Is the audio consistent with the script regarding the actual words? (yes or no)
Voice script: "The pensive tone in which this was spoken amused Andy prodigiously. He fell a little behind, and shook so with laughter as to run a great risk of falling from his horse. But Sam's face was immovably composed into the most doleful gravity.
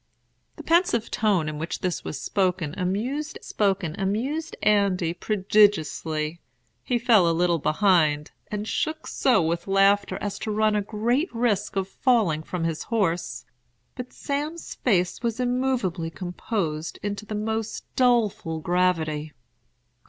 no